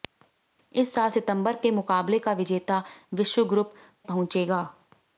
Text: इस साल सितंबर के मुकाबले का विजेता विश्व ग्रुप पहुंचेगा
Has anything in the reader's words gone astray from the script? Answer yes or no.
no